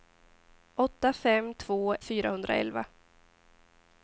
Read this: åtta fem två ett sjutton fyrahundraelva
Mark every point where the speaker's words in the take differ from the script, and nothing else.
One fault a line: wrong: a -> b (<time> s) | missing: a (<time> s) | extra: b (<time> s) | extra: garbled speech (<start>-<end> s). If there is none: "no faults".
missing: ett sjutton (1.9 s)